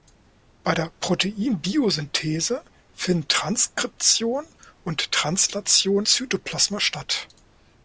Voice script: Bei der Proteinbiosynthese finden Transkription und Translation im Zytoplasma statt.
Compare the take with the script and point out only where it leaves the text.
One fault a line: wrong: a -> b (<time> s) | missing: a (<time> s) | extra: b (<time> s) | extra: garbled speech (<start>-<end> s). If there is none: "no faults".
missing: im (6.1 s)